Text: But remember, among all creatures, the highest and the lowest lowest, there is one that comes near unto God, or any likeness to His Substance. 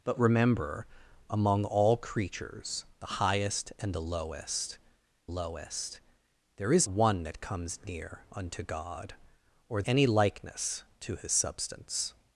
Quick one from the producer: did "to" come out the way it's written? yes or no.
yes